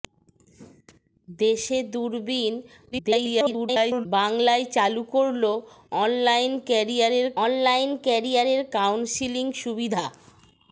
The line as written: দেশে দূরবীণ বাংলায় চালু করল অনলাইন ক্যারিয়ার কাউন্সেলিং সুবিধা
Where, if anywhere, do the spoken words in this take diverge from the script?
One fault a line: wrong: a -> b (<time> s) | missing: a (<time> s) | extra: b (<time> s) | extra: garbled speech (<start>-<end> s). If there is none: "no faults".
extra: garbled speech (2.9-4.1 s)
extra: অনলাইন ক্যারিয়ার (7.4 s)